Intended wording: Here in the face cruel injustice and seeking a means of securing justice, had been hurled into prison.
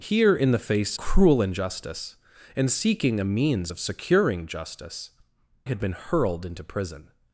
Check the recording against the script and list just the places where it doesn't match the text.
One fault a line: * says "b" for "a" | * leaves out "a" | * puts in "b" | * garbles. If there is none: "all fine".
all fine